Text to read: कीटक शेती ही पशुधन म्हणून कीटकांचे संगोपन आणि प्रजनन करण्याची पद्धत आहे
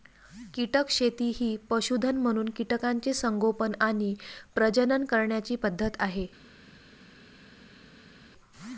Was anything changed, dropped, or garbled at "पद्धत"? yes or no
no